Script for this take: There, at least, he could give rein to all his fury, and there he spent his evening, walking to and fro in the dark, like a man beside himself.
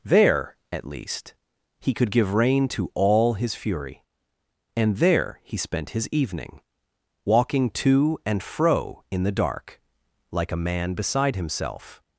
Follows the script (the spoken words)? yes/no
yes